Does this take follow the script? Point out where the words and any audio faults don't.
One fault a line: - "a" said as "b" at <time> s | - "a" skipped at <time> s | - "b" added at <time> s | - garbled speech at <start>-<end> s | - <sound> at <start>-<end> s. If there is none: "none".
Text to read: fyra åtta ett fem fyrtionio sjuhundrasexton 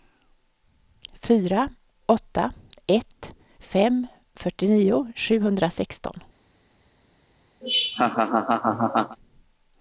- laugh at 7.6-9.2 s